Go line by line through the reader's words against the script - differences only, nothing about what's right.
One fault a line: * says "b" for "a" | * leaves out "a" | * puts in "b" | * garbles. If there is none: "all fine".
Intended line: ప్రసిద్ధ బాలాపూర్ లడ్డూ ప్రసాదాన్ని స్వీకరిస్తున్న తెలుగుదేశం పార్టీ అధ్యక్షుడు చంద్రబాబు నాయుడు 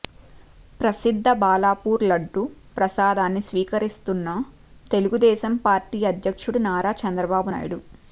* puts in "నారా"